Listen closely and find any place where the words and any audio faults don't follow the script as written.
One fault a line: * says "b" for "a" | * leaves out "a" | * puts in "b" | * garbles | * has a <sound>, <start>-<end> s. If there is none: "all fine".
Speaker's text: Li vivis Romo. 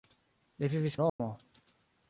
* has a dropout, 1.1-1.2 s